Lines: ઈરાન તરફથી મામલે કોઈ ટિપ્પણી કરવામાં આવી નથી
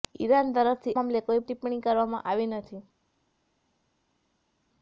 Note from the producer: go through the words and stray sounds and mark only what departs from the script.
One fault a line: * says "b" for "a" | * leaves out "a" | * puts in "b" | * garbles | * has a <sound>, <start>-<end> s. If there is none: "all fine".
all fine